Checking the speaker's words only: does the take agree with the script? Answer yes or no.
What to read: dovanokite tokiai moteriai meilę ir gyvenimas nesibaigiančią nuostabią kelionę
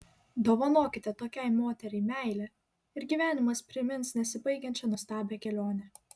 no